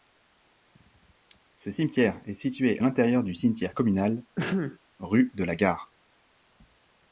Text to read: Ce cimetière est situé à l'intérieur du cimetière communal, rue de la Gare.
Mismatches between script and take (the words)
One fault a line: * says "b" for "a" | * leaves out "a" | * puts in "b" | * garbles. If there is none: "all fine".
* leaves out "à"